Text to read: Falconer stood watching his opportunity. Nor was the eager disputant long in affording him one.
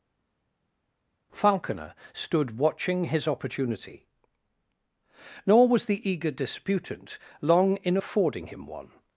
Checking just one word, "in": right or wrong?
right